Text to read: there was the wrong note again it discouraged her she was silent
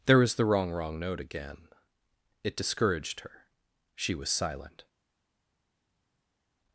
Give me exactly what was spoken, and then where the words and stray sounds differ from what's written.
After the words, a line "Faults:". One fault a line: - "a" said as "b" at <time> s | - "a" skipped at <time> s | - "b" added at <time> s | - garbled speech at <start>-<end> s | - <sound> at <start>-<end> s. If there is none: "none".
there was the wrong wrong note again it discouraged her she was silent
Faults:
- "wrong" added at 0.7 s